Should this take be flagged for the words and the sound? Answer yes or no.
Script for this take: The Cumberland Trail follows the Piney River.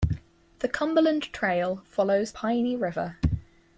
yes